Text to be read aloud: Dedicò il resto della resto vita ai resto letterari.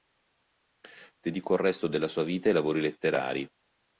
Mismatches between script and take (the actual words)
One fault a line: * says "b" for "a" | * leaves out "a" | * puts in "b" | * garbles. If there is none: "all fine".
* says "sua" for "resto"
* says "lavori" for "resto"